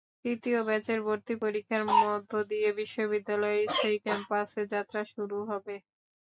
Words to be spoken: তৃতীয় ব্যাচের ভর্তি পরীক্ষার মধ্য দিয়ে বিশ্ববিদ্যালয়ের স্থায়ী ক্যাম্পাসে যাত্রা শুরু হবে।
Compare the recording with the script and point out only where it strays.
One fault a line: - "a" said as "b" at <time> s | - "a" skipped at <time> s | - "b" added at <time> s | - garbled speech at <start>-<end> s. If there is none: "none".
none